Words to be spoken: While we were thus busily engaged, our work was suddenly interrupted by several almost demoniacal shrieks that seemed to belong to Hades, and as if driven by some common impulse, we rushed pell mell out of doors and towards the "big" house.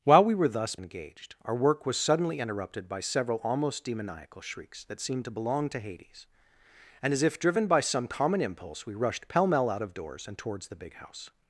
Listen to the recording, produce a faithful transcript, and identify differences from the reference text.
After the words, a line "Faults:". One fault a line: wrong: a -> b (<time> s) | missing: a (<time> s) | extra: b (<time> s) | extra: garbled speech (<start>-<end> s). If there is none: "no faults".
While we were thus engaged, our work was suddenly interrupted by several almost demoniacal shrieks that seemed to belong to Hades, and as if driven by some common impulse, we rushed pell mell out of doors and towards the "big" house.
Faults:
missing: busily (0.8 s)